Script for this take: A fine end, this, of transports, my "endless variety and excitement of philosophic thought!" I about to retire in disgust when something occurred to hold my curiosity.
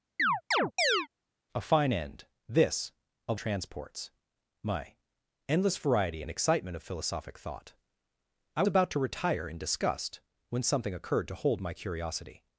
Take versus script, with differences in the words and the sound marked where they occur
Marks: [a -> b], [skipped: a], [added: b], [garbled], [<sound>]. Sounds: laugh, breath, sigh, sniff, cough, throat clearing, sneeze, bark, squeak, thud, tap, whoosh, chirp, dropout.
[chirp] A fine end, this, of transports, my "endless variety and excitement of philosophic thought!" I about to retire in disgust when something occurred to hold my curiosity.